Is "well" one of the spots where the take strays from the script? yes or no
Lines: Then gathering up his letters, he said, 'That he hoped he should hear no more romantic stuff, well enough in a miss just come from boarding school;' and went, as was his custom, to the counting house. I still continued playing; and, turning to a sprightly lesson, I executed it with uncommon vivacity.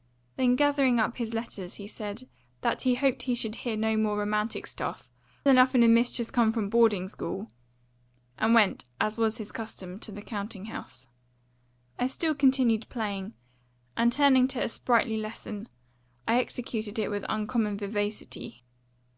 yes